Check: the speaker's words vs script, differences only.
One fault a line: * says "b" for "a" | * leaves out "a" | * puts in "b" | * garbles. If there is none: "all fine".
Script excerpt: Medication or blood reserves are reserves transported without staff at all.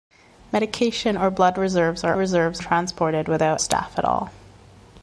all fine